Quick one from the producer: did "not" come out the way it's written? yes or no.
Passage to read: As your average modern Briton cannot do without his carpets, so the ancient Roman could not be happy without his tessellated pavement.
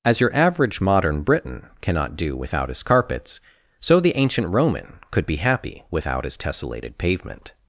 no